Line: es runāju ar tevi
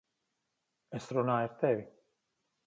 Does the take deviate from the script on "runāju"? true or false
false